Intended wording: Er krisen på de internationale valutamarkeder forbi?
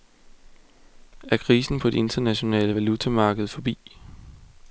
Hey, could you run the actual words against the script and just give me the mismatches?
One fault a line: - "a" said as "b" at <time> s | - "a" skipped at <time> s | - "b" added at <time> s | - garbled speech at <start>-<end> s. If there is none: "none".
none